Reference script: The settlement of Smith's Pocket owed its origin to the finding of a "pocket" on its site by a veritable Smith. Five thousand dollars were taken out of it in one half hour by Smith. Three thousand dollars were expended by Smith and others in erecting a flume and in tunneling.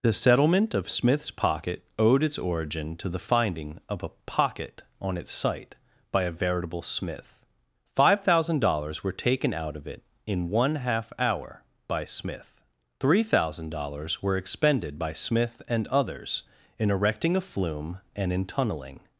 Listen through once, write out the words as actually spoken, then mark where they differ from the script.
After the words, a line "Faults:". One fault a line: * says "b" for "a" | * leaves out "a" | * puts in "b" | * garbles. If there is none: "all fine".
The settlement of Smith's Pocket owed its origin to the finding of a "pocket" on its site by a veritable Smith. Five thousand dollars were taken out of it in one half hour by Smith. Three thousand dollars were expended by Smith and others in erecting a flume and in tunneling.
Faults:
all fine